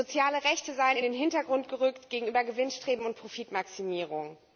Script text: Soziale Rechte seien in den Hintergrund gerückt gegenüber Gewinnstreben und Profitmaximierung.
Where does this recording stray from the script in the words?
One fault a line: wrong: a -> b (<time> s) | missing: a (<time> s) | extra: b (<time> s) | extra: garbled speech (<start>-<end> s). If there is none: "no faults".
no faults